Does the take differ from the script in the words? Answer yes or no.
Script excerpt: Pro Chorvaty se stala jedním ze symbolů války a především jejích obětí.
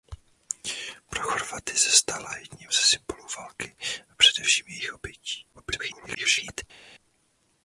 yes